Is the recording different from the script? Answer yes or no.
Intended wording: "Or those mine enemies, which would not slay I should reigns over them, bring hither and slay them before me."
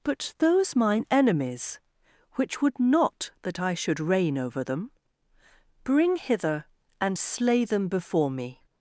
yes